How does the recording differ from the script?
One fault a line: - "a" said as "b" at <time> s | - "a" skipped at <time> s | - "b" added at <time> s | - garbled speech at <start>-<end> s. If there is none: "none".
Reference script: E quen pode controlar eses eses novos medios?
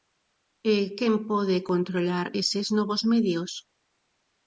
- "eses" skipped at 2.7 s